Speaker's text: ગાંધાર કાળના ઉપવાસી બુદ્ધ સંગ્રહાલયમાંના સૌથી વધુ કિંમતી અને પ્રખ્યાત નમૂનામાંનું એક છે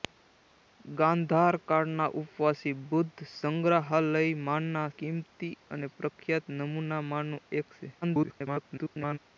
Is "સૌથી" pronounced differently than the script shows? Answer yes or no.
yes